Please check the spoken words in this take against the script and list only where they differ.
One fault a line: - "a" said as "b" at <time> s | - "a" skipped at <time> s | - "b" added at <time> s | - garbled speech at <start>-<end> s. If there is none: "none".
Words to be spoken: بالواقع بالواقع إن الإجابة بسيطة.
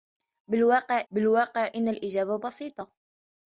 none